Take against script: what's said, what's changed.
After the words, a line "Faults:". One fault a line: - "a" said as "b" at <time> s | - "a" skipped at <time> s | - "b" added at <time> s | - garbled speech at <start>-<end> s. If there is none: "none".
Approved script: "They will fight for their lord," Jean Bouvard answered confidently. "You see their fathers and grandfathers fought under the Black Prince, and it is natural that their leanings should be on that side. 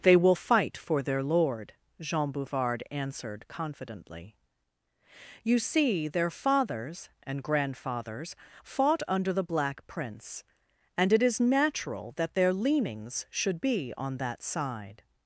"They will fight for their lord," Jean Bouvard answered confidently. "You see their fathers and grandfathers fought under the Black Prince, and it is natural that their leanings should be on that side.
Faults:
none